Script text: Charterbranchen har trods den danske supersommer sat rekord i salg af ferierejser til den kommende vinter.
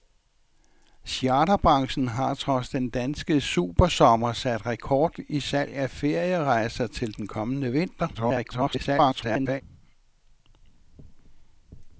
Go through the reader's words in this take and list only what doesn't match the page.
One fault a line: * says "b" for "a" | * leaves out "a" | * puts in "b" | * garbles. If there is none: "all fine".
* garbles